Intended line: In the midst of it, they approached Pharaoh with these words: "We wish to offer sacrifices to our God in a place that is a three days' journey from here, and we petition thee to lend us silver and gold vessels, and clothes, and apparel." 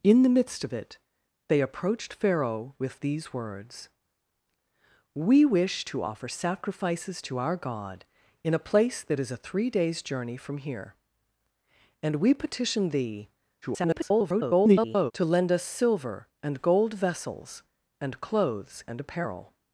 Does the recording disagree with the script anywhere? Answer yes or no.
yes